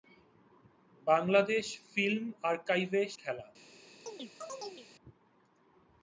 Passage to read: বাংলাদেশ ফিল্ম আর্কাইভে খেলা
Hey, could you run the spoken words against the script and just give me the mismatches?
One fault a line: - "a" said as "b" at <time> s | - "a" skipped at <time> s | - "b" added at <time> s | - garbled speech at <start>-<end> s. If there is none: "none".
none